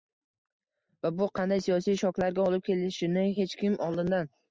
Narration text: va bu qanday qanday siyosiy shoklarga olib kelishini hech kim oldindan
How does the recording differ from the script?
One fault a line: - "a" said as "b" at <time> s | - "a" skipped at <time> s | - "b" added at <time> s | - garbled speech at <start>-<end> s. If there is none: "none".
- "qanday" skipped at 1.6 s